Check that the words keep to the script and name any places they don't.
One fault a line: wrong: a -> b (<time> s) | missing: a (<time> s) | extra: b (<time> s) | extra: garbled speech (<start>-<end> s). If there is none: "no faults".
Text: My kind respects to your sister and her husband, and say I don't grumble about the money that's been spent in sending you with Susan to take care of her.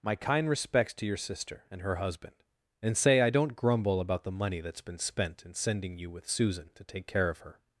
no faults